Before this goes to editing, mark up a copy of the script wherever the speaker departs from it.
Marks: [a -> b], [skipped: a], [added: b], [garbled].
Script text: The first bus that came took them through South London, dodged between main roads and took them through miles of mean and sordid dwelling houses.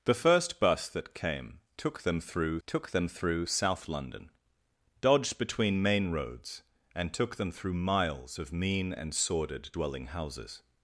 The first bus that came took them through [added: took them through] South London, dodged between main roads and took them through miles of mean and sordid dwelling houses.